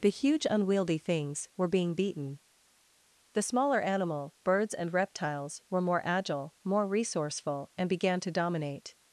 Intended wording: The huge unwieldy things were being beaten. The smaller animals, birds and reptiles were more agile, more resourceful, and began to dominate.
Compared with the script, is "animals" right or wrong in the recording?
wrong